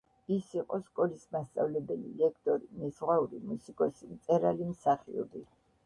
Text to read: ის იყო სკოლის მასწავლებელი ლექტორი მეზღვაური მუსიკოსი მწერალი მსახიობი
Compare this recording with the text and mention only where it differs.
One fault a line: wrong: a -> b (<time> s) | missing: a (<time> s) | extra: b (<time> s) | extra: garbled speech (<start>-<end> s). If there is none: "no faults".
no faults